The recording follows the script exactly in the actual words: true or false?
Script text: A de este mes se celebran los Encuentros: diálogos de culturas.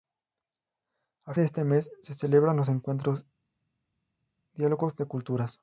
true